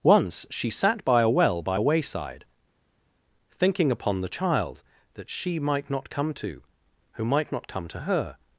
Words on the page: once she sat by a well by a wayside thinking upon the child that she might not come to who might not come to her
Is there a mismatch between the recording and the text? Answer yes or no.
no